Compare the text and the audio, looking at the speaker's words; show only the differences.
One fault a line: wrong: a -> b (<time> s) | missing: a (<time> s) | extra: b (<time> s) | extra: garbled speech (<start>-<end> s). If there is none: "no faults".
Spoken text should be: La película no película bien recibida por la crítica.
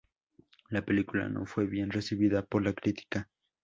wrong: película -> fue (1.4 s)